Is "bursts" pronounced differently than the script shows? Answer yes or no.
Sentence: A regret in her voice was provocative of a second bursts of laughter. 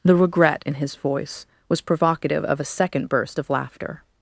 yes